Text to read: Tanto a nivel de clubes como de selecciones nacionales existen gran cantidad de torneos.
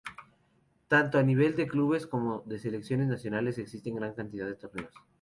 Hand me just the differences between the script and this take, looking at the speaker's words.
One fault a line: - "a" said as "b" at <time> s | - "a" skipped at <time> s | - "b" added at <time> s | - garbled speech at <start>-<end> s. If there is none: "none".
none